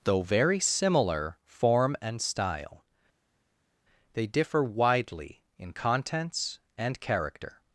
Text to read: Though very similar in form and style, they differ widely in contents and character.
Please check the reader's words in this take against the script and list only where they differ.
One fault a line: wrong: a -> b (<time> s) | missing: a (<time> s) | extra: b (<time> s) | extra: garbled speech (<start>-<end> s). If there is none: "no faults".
missing: in (1.4 s)